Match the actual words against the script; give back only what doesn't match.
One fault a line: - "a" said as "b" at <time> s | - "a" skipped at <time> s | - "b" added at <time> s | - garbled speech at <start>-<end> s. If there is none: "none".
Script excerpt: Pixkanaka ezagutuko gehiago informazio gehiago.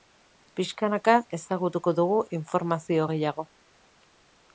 - "gehiago" said as "dugu" at 2.0 s